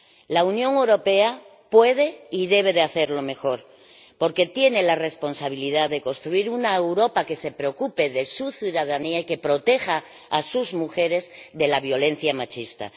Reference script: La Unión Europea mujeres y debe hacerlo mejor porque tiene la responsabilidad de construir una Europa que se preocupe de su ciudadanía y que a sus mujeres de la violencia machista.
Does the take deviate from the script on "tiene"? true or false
false